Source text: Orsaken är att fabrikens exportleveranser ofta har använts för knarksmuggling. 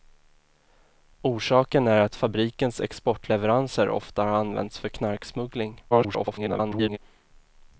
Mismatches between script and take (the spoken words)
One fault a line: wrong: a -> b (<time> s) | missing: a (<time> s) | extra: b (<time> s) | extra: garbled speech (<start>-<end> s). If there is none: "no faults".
extra: garbled speech (5.9-7.0 s)